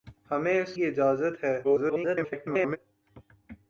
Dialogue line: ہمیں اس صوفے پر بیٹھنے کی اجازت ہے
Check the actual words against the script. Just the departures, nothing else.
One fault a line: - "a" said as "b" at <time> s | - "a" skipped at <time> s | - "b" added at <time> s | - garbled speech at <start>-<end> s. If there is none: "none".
- "صوفے پر بیٹھنے" skipped at 0.7 s
- garbled speech at 1.6-2.8 s